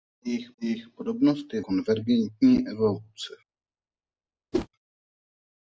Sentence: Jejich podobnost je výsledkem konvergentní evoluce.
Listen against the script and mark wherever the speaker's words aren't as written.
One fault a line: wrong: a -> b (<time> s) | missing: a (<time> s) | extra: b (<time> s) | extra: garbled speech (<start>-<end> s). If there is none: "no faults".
extra: jejich (0.6 s)
missing: výsledkem (1.6 s)